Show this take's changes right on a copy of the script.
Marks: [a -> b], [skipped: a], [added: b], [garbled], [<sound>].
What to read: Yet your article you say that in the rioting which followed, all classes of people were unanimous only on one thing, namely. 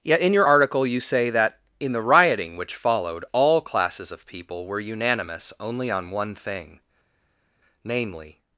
Yet [added: in] your article you say that in the rioting which followed, all classes of people were unanimous only on one thing, namely.